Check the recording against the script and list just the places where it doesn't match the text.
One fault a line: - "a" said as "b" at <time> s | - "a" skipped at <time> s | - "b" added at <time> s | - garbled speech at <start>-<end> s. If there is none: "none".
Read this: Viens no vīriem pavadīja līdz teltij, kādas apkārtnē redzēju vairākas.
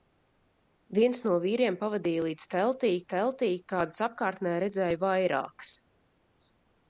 - "teltij" added at 3.1 s